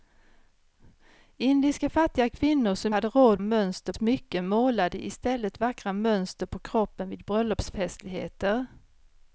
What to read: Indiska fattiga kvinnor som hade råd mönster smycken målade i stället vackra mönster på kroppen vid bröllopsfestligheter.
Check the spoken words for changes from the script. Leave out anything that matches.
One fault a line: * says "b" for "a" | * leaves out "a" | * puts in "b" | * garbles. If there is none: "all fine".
all fine